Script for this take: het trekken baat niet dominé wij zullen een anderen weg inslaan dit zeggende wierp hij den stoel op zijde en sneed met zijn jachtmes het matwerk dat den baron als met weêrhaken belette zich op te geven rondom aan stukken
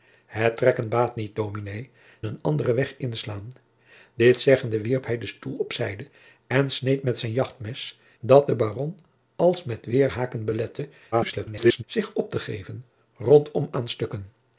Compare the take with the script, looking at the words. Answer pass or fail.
fail